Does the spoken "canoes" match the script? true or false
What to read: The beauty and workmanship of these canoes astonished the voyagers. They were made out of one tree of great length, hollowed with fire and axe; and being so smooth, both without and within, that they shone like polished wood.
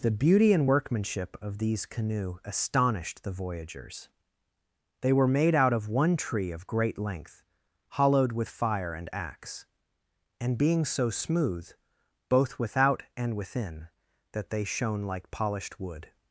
false